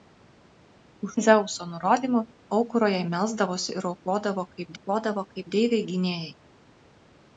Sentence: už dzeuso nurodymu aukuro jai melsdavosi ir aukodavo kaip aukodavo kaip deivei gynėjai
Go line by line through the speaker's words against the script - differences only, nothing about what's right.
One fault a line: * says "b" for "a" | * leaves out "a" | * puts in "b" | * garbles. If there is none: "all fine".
all fine